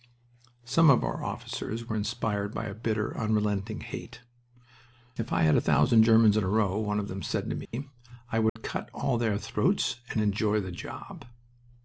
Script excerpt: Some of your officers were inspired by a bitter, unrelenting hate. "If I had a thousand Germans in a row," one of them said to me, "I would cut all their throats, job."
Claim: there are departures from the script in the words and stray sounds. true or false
true